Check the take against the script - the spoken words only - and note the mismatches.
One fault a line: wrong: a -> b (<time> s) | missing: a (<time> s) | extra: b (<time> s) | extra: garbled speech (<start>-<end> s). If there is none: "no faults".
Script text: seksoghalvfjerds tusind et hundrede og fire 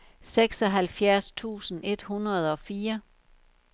no faults